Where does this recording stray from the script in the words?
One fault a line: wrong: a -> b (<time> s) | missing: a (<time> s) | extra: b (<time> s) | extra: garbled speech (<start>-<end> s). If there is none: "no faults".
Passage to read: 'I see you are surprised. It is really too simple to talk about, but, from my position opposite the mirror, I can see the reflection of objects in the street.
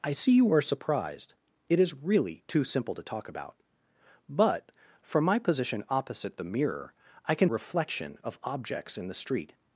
missing: see the (7.5 s)